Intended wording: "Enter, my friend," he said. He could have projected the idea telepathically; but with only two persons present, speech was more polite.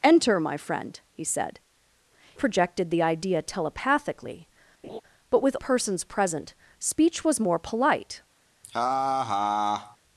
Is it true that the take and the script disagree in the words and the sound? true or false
true